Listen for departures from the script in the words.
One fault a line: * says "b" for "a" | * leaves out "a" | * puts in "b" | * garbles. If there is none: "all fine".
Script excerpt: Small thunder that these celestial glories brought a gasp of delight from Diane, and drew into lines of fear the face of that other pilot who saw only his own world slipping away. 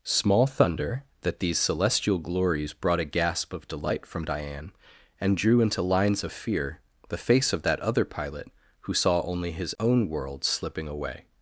all fine